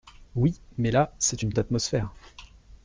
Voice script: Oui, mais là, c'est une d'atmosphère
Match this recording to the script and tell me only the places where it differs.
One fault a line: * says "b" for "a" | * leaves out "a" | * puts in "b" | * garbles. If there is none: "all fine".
all fine